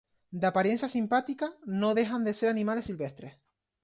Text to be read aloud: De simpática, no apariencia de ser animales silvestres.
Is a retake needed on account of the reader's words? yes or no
yes